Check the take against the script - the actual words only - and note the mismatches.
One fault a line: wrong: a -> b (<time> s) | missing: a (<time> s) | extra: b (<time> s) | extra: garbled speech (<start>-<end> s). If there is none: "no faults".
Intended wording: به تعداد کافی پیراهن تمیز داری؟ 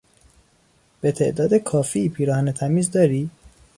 no faults